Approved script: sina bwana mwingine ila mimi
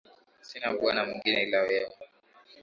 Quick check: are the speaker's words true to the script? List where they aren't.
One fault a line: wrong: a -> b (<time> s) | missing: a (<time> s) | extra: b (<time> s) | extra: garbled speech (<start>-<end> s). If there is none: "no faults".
wrong: mimi -> wewe (1.6 s)